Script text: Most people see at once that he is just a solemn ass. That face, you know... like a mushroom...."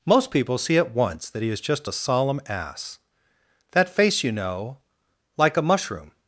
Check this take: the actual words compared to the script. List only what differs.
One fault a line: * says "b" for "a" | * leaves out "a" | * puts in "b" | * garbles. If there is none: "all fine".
all fine